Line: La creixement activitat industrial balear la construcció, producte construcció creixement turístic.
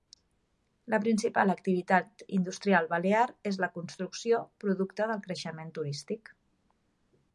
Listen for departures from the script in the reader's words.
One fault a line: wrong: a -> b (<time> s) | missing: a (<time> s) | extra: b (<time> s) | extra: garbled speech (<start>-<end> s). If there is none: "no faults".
wrong: creixement -> principal (1.0 s)
extra: és (3.5 s)
wrong: construcció -> del (5.1 s)